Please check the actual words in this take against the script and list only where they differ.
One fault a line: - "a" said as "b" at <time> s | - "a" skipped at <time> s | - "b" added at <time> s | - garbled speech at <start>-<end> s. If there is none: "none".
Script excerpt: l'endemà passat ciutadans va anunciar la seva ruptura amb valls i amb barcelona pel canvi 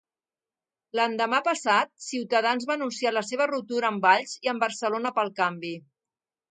none